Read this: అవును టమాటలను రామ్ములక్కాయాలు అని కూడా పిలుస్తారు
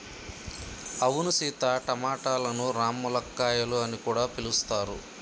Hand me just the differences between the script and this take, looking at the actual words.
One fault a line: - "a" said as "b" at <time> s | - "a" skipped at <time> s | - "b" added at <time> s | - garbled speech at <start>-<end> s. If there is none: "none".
- "సీత" added at 1.3 s